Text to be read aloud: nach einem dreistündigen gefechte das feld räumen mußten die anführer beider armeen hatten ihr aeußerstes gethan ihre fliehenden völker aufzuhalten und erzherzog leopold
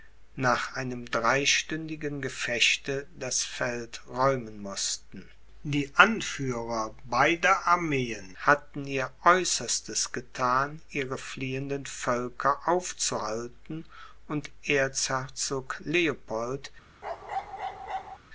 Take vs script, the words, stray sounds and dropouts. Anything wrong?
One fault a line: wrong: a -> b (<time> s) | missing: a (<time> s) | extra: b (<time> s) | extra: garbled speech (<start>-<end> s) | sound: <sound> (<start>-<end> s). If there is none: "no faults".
sound: bark (17.0-18.2 s)